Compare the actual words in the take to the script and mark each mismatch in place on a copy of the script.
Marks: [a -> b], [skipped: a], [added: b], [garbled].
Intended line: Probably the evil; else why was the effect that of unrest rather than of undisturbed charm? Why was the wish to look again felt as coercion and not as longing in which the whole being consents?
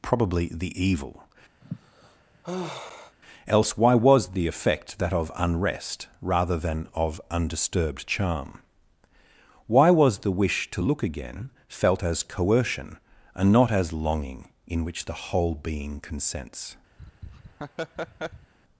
Probably the evil; else why was the effect that of unrest rather than of undisturbed charm? Why was the wish to look again felt as coercion and not as longing in which the whole being consents?